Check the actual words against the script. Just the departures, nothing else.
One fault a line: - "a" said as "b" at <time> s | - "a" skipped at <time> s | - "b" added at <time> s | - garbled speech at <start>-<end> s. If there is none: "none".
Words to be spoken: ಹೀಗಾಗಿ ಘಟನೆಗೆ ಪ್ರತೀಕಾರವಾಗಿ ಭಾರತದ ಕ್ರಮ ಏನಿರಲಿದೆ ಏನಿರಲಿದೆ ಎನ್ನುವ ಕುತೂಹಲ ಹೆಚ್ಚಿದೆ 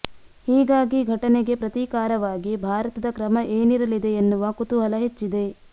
- "ಏನಿರಲಿದೆ" skipped at 4.1 s